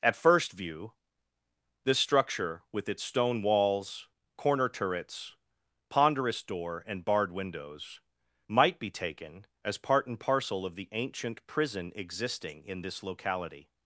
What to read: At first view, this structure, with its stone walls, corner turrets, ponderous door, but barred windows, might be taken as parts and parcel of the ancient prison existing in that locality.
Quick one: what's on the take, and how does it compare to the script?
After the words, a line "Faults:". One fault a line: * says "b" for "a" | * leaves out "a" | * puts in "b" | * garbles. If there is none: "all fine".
At first view, this structure, with its stone walls, corner turrets, ponderous door, and barred windows, might be taken as part and parcel of the ancient prison existing in this locality.
Faults:
* says "and" for "but"
* says "part" for "parts"
* says "this" for "that"